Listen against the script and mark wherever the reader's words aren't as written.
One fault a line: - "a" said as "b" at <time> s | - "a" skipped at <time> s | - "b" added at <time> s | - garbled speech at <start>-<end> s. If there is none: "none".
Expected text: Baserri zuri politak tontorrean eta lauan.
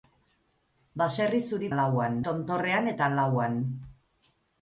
- "politak" said as "lauan" at 1.8 s